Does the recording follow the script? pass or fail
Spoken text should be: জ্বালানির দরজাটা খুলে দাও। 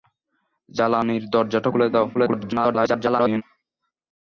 fail